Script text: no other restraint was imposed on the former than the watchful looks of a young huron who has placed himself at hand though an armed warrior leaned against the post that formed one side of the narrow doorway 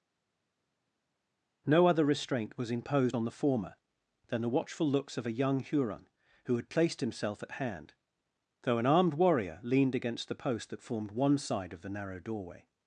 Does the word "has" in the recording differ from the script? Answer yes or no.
yes